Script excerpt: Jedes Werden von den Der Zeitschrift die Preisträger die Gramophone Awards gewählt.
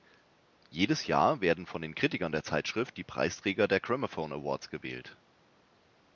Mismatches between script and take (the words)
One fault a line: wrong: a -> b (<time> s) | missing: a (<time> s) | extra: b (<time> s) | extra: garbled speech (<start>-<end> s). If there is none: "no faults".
extra: Jahr (1.1 s)
extra: Kritikern (1.9 s)
wrong: die -> der (3.7 s)